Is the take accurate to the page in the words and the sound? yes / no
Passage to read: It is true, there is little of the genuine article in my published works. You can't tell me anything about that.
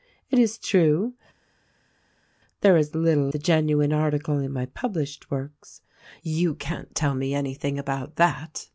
no